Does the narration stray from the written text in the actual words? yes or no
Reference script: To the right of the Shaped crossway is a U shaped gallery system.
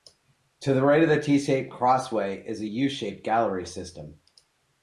yes